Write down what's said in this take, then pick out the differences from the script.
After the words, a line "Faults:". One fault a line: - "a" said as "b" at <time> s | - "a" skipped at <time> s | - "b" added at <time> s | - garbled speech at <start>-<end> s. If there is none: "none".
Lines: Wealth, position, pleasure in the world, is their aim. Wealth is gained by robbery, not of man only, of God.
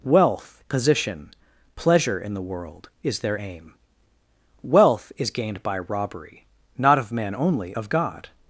Wealth, position, pleasure in the world, is their aim. Wealth is gained by robbery, not of man only, of God.
Faults:
none